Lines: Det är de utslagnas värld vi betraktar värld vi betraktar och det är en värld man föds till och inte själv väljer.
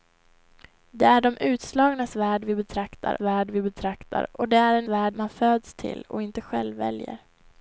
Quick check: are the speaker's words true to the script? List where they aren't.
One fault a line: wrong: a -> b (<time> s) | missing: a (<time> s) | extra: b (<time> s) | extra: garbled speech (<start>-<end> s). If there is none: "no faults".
no faults